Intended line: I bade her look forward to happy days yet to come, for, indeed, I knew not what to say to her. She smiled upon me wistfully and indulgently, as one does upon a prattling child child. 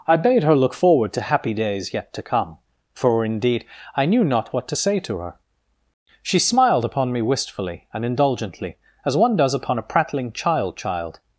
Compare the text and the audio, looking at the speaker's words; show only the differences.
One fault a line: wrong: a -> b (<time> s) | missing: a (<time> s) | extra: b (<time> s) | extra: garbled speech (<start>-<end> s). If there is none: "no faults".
no faults